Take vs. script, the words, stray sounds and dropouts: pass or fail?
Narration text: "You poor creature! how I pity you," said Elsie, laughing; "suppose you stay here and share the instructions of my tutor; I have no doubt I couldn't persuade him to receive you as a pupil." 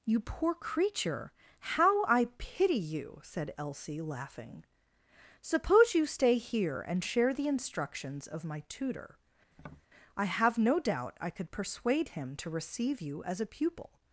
fail